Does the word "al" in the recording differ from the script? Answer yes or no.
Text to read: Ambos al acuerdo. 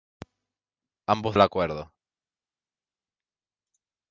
no